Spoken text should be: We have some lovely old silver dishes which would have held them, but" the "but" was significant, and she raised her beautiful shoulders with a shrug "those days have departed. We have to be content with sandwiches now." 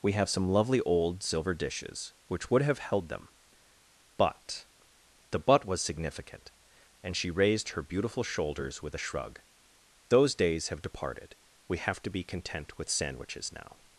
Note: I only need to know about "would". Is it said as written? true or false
true